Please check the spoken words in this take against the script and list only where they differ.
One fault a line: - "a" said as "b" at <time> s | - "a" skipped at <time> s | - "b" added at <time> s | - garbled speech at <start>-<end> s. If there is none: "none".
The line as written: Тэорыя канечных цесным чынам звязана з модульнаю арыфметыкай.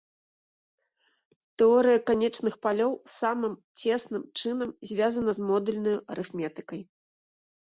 - "палёў самым" added at 2.7 s